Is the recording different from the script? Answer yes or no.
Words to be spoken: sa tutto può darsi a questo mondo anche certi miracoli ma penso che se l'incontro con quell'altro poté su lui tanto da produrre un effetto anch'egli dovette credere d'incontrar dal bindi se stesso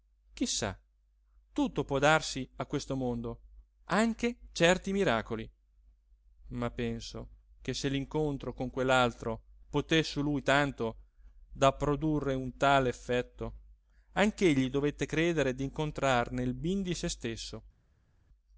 yes